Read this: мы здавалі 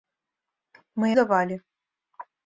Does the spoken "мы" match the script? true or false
true